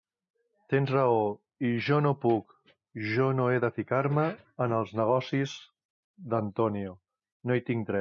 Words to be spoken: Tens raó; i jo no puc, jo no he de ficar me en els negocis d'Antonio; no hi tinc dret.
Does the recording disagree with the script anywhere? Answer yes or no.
no